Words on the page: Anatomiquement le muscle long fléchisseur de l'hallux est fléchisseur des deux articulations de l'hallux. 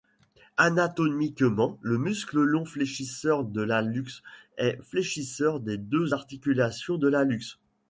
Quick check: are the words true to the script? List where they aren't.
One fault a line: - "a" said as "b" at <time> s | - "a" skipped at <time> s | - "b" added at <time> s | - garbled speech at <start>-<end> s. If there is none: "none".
none